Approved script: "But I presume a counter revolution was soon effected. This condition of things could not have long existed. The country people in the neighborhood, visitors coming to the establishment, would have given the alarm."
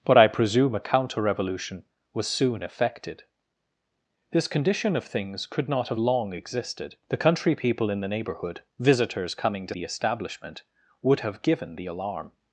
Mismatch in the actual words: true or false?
false